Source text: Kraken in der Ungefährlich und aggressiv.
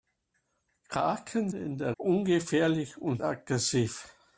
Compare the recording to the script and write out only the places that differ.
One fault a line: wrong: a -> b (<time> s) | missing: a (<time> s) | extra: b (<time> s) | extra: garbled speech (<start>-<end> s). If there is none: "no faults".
no faults